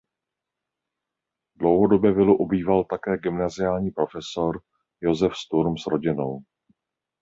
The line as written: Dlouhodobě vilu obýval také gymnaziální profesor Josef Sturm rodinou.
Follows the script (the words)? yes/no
no